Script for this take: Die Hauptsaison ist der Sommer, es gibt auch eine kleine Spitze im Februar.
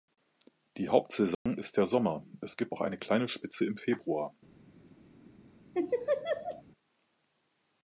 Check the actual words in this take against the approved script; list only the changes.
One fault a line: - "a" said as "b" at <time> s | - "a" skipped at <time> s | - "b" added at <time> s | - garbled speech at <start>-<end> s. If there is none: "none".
none